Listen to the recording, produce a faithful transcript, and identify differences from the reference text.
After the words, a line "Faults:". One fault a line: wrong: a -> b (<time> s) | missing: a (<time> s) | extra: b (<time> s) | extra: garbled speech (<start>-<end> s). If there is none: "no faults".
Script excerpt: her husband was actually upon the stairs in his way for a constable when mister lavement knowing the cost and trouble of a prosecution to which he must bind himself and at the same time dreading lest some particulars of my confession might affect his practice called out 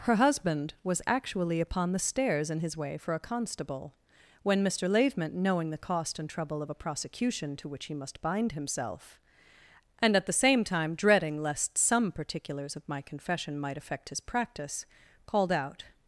her husband was actually upon the stairs in his way for a constable when mister lavement knowing the cost and trouble of a prosecution to which he must bind himself and at the same time dreading lest some particulars of my confession might affect his practice called out
Faults:
no faults